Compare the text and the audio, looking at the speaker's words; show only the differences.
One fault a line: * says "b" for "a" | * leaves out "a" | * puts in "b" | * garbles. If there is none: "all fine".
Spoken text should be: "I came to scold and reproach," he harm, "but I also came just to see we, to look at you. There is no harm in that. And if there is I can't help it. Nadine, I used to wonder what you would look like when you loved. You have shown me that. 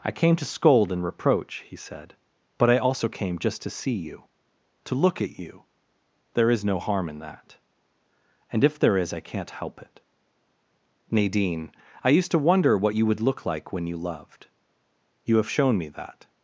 * says "said" for "harm"
* says "you" for "we"